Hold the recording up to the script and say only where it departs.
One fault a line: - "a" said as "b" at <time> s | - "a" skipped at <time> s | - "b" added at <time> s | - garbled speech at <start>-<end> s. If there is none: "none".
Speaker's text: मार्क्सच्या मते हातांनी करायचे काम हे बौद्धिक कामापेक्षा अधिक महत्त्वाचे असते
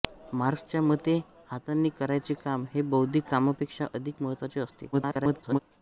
- garbled speech at 4.9-5.6 s